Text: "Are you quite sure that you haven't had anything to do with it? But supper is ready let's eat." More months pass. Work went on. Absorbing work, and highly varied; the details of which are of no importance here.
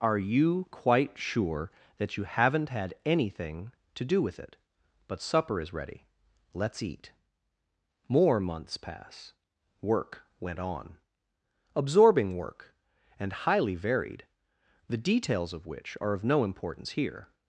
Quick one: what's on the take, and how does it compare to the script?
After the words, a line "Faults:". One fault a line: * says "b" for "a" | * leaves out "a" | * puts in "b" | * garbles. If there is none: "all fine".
"Are you quite sure that you haven't had anything to do with it? But supper is ready let's eat." More months pass. Work went on. Absorbing work, and highly varied; the details of which are of no importance here.
Faults:
all fine